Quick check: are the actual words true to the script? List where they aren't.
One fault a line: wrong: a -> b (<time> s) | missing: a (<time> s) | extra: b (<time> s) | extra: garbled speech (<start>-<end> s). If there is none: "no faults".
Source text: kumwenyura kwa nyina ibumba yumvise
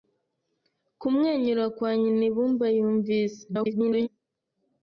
extra: garbled speech (3.5-4.1 s)